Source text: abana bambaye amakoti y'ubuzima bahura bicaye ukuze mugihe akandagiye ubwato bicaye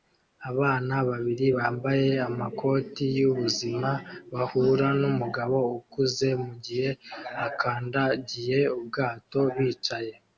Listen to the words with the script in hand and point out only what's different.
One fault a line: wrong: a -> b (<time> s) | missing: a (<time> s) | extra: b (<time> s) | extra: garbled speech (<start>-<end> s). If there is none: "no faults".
extra: babiri (1.1 s)
wrong: bicaye -> numugabo (5.0 s)